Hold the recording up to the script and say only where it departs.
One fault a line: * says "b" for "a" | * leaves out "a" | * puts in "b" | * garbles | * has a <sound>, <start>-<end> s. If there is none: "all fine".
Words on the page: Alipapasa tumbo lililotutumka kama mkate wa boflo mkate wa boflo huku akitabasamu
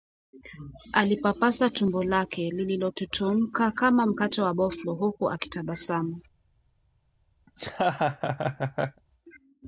* puts in "lake"
* leaves out "mkate wa boflo"
* has a laugh, 7.5-9.0 s